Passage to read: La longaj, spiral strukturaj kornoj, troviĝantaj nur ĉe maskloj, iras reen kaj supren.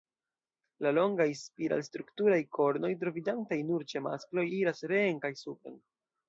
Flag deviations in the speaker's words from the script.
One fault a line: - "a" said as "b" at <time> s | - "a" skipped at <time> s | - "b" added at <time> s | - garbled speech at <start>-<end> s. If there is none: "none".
none